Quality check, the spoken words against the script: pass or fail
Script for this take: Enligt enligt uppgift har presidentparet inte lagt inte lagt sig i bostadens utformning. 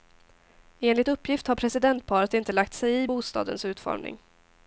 fail